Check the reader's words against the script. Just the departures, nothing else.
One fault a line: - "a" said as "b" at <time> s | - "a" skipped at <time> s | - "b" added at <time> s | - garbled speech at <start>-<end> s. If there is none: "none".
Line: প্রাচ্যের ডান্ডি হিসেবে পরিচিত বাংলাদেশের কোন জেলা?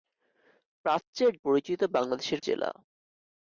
- "ডান্ডি হিসেবে" skipped at 1.3 s
- "কোন" skipped at 2.4 s